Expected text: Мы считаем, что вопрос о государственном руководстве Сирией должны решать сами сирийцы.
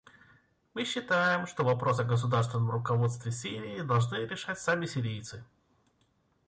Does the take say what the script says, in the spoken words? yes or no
yes